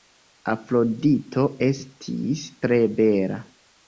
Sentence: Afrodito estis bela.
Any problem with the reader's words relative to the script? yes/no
yes